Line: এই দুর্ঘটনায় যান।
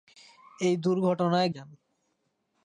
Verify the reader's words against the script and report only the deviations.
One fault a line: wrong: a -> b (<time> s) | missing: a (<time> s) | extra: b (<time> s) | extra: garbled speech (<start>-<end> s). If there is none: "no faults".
no faults